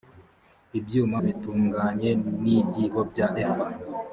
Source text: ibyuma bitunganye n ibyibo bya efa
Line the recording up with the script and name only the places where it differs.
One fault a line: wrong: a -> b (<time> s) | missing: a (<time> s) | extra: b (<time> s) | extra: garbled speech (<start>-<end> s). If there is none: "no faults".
no faults